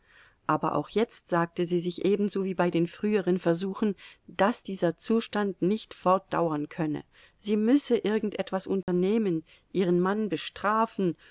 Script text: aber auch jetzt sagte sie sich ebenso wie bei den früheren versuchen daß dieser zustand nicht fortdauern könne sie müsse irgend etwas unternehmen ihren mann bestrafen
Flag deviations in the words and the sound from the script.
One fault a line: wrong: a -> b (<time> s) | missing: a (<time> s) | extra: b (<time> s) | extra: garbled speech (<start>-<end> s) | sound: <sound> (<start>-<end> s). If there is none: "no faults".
sound: dropout (8.8-8.9 s)